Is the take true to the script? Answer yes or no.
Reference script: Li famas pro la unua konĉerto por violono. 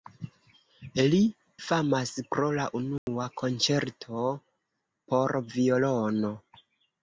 yes